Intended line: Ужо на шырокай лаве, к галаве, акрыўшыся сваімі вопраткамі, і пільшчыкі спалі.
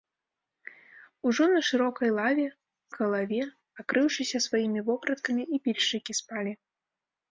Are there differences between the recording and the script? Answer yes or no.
no